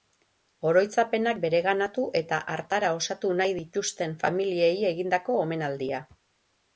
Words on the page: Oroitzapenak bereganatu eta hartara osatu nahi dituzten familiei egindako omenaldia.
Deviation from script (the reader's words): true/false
false